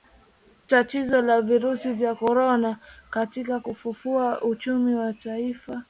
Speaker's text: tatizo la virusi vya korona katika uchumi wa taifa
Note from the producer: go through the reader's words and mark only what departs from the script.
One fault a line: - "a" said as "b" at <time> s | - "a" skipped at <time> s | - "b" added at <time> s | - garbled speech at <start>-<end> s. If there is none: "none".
- "kufufua" added at 3.6 s